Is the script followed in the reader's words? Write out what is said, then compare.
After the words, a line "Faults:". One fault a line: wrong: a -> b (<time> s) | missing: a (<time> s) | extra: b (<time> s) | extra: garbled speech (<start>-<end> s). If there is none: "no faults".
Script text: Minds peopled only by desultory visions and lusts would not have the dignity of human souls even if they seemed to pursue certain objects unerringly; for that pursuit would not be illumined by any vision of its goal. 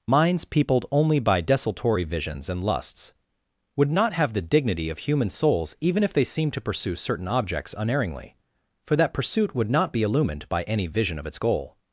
Minds peopled only by desultory visions and lusts would not have the dignity of human souls even if they seemed to pursue certain objects unerringly; for that pursuit would not be illumined by any vision of its goal.
Faults:
no faults